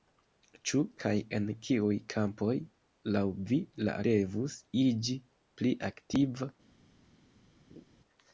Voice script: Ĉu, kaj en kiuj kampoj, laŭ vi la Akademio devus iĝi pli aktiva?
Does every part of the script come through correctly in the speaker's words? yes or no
no